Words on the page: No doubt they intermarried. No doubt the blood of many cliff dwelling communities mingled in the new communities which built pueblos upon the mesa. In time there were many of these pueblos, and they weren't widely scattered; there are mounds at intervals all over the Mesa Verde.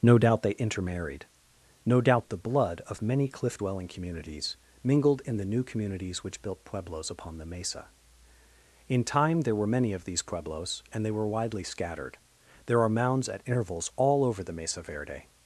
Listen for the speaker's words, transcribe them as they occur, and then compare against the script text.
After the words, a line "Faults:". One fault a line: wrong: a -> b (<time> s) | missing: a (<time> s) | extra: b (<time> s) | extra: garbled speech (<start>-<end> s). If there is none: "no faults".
No doubt they intermarried. No doubt the blood of many cliff dwelling communities mingled in the new communities which built pueblos upon the mesa. In time there were many of these pueblos, and they were widely scattered; there are mounds at intervals all over the Mesa Verde.
Faults:
wrong: weren't -> were (11.1 s)